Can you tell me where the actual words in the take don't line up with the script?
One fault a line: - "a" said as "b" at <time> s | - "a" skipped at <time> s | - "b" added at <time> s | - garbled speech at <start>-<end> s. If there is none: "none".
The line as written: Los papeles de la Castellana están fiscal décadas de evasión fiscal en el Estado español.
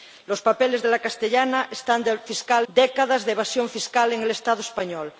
none